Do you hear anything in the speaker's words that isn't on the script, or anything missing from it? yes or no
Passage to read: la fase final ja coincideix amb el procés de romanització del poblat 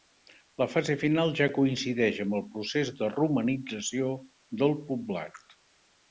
no